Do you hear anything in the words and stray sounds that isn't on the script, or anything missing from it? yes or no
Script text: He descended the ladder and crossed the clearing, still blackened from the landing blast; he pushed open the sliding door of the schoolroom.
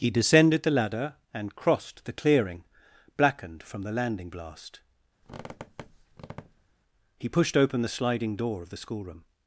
yes